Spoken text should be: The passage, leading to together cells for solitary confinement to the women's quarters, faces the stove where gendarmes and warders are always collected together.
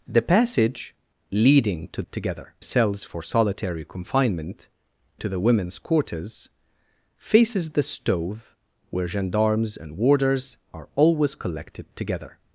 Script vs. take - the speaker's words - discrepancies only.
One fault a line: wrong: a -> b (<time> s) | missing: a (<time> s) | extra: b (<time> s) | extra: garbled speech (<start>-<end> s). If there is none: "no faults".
no faults